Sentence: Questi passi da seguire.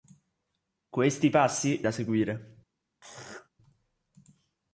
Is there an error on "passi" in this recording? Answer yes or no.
no